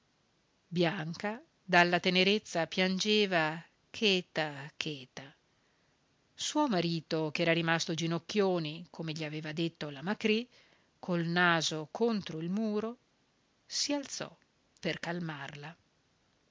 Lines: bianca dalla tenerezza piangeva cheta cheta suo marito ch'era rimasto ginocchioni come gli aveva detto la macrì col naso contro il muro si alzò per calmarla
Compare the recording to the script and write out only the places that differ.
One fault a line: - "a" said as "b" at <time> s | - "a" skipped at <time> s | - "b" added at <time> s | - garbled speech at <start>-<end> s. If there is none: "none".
none